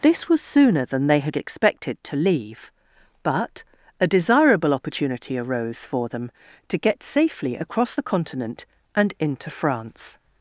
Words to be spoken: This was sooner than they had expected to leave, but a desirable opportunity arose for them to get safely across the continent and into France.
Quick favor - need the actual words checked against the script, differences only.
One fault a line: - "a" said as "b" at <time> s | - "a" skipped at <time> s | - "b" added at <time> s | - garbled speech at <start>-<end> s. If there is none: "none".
none